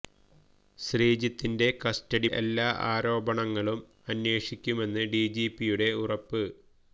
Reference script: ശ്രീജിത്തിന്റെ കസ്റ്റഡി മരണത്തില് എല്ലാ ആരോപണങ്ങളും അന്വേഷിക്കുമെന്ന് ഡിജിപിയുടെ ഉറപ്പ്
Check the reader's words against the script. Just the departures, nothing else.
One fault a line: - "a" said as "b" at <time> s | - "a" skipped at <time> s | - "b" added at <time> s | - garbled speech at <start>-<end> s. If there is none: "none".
- "മരണത്തില്" skipped at 2.3 s